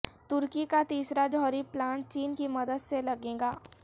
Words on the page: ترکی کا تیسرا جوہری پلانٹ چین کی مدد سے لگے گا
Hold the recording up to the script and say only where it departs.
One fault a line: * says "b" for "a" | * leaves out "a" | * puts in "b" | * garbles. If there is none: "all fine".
all fine